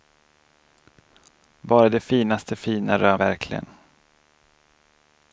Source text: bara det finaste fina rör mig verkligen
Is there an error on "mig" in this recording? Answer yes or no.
yes